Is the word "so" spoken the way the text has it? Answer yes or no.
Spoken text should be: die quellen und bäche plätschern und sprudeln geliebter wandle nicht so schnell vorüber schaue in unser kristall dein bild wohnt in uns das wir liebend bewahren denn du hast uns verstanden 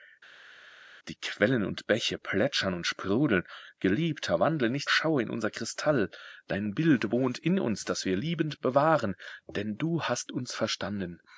no